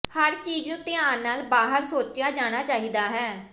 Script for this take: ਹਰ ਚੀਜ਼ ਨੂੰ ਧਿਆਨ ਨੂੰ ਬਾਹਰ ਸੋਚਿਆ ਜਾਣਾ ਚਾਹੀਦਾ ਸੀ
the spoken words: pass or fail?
fail